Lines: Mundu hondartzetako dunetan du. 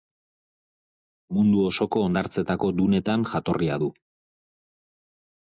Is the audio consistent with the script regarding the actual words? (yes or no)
no